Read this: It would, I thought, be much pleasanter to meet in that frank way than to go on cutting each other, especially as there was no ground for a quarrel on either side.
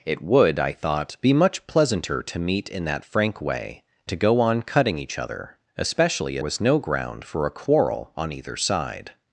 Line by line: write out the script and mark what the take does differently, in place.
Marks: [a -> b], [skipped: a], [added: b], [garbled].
It would, I thought, be much pleasanter to meet in that frank way [skipped: than] to go on cutting each other, especially [skipped: as there] was no ground for a quarrel on either side.